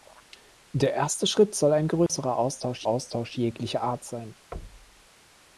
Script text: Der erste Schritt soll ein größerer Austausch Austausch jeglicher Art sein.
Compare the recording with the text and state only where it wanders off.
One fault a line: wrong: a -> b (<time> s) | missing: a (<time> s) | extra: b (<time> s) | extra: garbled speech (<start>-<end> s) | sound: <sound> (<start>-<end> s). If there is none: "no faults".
sound: dropout (2.1-2.1 s)
sound: thud (4.5-5.1 s)